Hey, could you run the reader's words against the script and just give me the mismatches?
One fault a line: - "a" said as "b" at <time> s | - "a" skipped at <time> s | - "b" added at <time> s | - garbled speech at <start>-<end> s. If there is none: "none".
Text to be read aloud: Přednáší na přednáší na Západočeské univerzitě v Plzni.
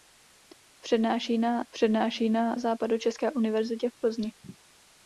none